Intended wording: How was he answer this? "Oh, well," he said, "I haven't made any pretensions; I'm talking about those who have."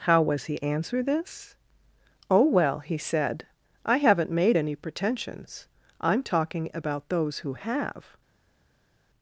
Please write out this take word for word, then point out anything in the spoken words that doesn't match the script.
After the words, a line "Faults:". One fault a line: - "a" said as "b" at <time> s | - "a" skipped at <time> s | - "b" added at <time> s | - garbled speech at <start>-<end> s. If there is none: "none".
How was he answer this? "Oh, well," he said, "I haven't made any pretensions; I'm talking about those who have."
Faults:
none